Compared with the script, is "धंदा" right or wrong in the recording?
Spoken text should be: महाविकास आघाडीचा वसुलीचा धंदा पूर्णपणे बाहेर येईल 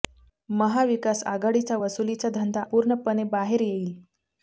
right